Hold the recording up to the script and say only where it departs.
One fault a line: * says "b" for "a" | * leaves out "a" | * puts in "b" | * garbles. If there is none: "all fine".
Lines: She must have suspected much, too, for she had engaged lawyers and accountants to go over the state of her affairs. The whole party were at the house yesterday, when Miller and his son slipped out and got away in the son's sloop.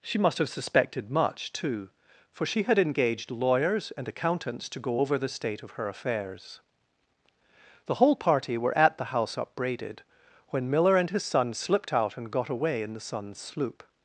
* says "upbraided" for "yesterday"